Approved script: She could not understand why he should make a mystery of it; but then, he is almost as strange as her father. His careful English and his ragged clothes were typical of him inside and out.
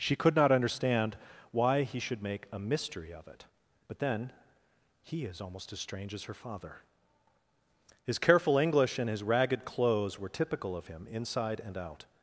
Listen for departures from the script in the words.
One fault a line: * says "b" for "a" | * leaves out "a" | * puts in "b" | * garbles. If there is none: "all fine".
all fine